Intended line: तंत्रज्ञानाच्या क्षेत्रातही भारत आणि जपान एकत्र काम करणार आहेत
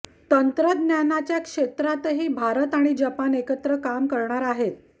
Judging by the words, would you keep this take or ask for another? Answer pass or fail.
pass